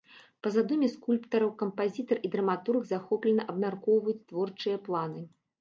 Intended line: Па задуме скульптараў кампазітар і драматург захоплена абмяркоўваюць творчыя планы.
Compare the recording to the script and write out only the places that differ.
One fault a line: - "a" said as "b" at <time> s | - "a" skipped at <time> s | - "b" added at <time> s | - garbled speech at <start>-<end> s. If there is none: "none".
none